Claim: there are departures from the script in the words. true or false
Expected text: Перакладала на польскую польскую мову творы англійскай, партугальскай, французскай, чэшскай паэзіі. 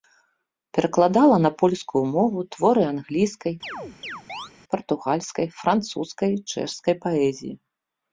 true